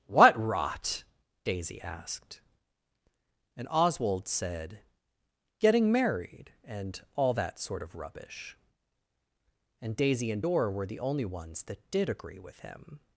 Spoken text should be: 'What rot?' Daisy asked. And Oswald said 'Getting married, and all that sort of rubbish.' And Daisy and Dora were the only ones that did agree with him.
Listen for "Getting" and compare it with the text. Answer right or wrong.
right